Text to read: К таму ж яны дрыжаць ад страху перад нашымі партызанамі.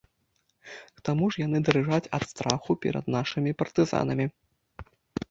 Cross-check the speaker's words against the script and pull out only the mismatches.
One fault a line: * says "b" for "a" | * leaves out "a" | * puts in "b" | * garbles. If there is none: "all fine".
all fine